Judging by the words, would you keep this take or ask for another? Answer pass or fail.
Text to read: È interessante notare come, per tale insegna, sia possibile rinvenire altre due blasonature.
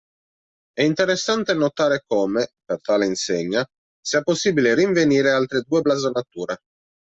pass